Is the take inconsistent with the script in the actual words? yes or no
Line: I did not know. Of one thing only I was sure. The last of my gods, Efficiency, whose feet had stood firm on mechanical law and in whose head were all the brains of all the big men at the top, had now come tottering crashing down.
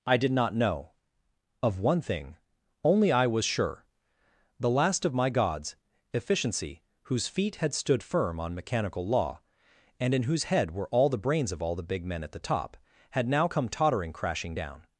no